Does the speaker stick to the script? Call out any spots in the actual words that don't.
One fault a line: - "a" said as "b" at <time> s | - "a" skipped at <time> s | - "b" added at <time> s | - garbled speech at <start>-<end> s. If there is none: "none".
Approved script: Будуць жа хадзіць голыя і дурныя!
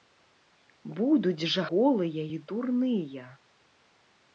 - "хадзіць" skipped at 1.6 s